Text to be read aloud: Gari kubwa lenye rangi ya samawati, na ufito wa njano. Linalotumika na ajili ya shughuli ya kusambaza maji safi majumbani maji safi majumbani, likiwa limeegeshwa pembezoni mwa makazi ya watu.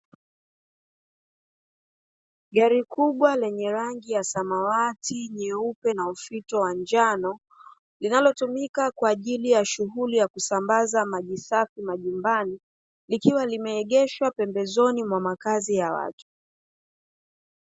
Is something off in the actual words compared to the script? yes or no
yes